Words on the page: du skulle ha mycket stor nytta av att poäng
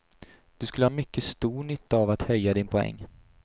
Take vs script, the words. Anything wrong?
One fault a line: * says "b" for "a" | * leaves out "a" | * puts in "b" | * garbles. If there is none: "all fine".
* puts in "höja din"